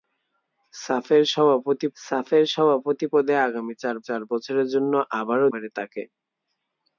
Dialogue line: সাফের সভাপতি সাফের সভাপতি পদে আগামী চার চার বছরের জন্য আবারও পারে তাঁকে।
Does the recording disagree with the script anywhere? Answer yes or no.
no